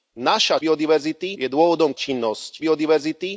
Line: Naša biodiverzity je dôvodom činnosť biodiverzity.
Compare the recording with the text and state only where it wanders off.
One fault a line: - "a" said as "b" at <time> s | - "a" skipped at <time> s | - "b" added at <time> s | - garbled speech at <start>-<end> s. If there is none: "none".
none